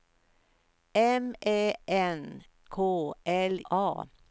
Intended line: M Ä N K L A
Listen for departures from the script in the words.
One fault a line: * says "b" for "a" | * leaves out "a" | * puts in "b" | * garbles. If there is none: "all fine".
all fine